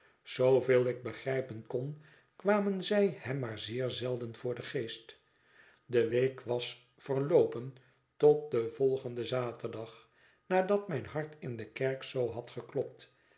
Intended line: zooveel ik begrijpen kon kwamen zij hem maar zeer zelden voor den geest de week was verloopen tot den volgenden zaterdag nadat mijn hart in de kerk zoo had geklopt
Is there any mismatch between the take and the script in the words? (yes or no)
no